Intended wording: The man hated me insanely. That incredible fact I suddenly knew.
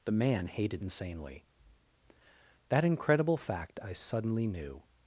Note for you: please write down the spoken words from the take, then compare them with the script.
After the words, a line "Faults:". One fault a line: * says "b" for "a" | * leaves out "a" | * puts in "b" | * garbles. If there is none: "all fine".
The man hated insanely. That incredible fact I suddenly knew.
Faults:
* leaves out "me"